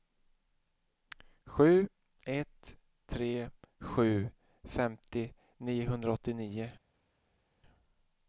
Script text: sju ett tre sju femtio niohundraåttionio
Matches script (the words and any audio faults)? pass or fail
pass